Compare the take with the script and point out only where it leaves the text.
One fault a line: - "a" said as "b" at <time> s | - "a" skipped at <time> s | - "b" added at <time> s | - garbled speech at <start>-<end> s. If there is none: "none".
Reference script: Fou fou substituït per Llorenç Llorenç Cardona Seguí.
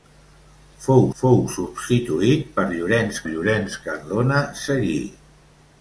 none